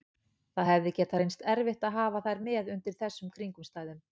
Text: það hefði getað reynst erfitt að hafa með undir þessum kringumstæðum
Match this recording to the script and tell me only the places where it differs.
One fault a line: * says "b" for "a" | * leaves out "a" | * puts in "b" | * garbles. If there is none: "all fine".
* puts in "þær"